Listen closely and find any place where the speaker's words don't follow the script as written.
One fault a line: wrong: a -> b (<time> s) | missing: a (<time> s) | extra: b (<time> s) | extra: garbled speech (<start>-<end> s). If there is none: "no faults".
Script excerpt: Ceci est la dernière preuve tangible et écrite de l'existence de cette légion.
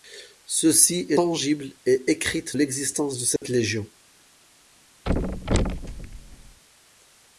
missing: la dernière preuve (1.2 s)
missing: de (2.6 s)